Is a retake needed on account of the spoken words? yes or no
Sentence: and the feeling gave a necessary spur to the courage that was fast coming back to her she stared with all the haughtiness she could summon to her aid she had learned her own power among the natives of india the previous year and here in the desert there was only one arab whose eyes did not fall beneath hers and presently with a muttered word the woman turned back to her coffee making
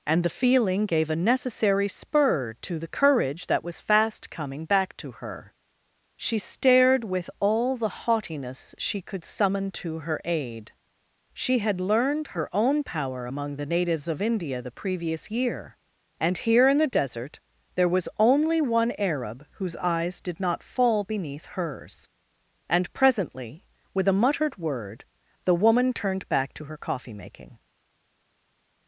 no